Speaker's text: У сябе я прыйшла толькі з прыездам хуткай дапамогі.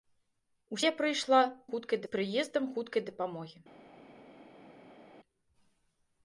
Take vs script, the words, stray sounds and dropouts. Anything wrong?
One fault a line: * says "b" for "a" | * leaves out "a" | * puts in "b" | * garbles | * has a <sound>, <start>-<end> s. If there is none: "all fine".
* leaves out "сябе"
* says "хуткай" for "толькі"